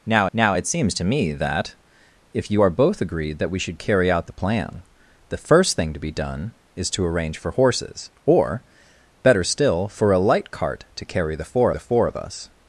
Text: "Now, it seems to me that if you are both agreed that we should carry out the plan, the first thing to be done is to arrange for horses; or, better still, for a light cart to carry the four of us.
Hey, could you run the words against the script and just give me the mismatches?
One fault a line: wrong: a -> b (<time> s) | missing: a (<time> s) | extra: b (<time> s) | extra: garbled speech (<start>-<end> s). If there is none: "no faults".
extra: now (0.3 s)
extra: the four (11.7 s)